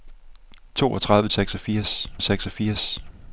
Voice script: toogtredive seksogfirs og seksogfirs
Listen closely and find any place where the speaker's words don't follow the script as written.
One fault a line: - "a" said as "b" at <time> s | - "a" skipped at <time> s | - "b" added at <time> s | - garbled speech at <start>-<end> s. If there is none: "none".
none